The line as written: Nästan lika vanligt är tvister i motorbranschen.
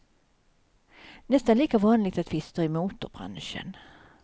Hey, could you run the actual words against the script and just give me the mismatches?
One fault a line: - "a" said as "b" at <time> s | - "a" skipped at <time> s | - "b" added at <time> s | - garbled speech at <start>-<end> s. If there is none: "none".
none